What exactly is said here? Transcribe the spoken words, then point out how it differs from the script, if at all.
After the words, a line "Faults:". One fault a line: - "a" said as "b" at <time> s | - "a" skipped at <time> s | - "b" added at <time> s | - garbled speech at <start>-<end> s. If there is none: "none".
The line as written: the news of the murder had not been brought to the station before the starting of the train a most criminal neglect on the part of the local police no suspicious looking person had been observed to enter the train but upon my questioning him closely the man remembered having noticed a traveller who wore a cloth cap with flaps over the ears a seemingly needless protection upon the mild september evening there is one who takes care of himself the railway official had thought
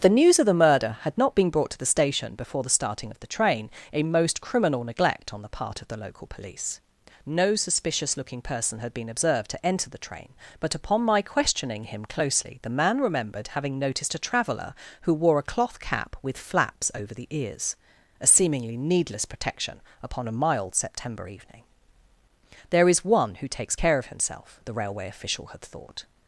the news of the murder had not been brought to the station before the starting of the train a most criminal neglect on the part of the local police no suspicious looking person had been observed to enter the train but upon my questioning him closely the man remembered having noticed a traveller who wore a cloth cap with flaps over the ears a seemingly needless protection upon a mild september evening there is one who takes care of himself the railway official had thought
Faults:
- "the" said as "a" at 20.3 s